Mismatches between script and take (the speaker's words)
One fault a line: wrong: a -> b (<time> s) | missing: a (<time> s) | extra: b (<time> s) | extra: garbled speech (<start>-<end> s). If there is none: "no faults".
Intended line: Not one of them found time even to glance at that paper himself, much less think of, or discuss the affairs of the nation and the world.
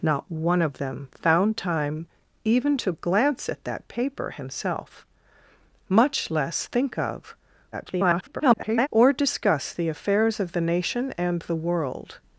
extra: garbled speech (7.7-8.9 s)